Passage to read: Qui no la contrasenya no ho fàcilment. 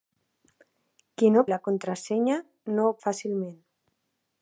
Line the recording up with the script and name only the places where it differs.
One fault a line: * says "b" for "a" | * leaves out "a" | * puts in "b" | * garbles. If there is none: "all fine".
all fine